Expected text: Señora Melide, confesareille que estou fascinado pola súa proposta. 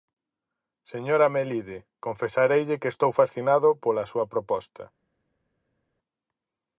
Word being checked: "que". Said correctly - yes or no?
yes